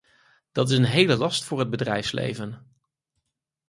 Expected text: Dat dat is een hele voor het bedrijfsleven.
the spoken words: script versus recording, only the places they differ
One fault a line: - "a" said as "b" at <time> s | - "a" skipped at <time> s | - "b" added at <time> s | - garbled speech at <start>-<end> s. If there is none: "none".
- "dat" skipped at 0.7 s
- "last" added at 1.1 s